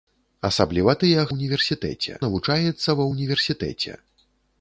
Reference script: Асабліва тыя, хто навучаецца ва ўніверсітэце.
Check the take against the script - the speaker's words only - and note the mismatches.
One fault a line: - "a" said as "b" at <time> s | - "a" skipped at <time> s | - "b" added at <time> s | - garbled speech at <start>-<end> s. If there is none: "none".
- "хто" said as "ўніверсітэце" at 1.3 s